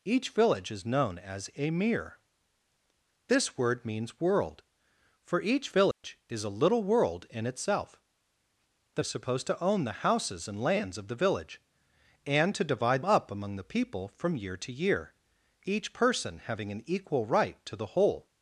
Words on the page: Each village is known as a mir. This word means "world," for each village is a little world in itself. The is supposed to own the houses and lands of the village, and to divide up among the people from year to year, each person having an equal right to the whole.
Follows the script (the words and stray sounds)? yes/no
no